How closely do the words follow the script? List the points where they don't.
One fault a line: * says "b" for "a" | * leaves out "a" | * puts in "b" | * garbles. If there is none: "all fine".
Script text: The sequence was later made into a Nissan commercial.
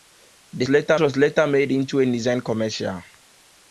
* says "later" for "sequence"